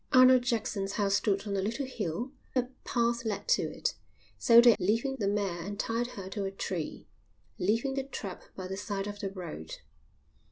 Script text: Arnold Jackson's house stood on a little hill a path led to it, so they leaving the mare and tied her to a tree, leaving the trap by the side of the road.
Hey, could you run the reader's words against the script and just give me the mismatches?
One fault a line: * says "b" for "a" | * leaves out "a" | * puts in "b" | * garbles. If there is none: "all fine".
all fine